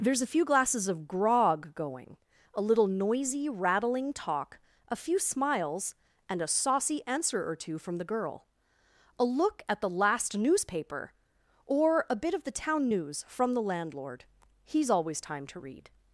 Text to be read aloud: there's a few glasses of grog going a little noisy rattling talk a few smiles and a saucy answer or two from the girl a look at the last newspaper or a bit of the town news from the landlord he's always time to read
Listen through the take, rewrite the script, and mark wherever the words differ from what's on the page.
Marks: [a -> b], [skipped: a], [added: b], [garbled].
there's a few glasses of grog going a little noisy rattling talk a few smiles and a saucy answer or two from the girl a look at the last newspaper or a bit of the town news from the landlord he's always time to read